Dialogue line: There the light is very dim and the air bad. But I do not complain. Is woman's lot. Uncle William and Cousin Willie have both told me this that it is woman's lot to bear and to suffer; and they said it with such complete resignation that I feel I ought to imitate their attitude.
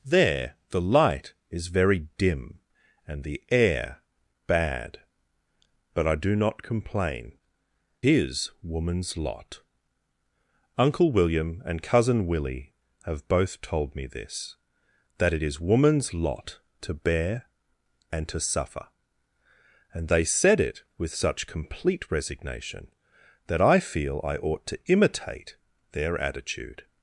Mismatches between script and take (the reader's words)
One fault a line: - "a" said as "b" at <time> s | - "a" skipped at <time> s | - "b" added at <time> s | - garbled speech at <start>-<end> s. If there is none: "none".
none